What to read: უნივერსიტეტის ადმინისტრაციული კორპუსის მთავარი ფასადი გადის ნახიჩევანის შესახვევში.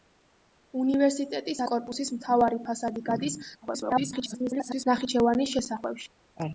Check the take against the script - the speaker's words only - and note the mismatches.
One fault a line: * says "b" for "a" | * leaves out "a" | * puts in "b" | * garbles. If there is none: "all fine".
* leaves out "ადმინისტრაციული"
* garbles